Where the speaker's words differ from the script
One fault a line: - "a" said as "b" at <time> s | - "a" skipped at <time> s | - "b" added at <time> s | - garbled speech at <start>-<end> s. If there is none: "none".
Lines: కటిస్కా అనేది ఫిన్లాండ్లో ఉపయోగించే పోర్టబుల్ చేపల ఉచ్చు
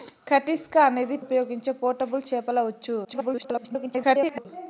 - "ఫిన్లాండ్లో" skipped at 1.2 s
- garbled speech at 3.0-4.5 s